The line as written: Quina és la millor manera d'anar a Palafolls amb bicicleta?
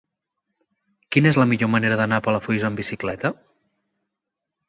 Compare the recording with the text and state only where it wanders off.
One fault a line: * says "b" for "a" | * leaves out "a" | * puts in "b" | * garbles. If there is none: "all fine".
all fine